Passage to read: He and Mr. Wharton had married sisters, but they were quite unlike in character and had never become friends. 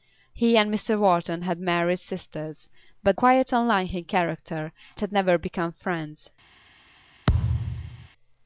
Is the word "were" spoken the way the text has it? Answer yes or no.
no